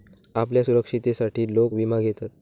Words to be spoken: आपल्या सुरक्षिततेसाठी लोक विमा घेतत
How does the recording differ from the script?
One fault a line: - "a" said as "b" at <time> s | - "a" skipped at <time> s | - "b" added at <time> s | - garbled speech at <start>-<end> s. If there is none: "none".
none